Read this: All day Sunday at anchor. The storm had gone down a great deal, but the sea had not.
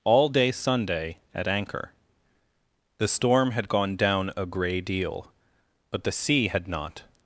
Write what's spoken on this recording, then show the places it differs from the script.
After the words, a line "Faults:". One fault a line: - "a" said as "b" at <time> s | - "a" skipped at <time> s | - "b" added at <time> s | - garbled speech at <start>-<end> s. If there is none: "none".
All day Sunday at anchor. The storm had gone down a grey deal, but the sea had not.
Faults:
- "great" said as "grey" at 4.5 s